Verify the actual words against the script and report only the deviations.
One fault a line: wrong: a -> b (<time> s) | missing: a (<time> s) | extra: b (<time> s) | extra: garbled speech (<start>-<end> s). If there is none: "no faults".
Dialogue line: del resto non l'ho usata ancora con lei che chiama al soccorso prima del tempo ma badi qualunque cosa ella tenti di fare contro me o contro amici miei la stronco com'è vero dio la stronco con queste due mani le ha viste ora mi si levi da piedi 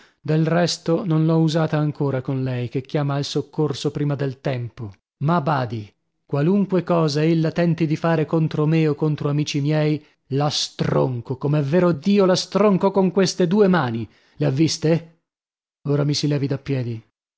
no faults